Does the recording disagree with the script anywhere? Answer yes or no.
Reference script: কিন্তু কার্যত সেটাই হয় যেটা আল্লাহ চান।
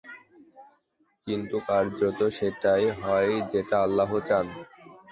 no